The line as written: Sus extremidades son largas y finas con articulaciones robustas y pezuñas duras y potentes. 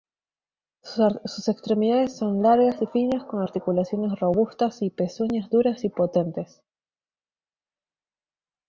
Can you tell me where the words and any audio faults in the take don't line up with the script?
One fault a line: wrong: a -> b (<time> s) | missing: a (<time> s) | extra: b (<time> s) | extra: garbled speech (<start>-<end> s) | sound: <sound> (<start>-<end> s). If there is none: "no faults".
no faults